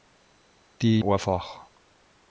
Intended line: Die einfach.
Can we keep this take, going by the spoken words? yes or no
yes